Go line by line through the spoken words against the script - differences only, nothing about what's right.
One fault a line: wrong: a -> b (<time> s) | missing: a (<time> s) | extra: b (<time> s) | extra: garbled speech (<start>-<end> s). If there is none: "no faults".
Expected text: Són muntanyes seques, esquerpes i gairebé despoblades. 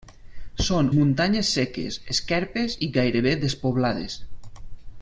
no faults